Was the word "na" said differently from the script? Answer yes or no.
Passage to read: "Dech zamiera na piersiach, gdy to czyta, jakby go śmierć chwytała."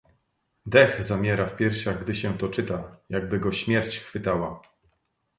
yes